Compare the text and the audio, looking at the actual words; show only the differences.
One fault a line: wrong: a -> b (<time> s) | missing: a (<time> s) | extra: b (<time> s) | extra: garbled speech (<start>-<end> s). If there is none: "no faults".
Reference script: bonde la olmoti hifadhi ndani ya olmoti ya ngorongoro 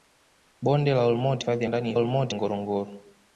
no faults